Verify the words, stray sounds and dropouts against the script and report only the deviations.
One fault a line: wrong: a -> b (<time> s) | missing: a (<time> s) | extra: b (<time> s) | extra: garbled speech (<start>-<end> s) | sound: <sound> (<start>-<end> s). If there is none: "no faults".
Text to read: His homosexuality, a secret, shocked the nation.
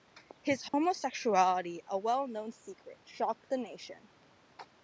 sound: dropout (0.7-0.7 s)
extra: well known (2.0 s)